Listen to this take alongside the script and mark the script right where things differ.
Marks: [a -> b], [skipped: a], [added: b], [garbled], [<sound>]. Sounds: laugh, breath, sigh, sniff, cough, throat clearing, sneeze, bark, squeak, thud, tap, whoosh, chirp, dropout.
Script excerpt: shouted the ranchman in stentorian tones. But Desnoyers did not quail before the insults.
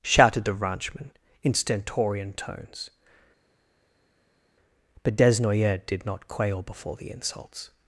shouted the ranchman in stentorian tones. But Desnoyers did not quail before the insults.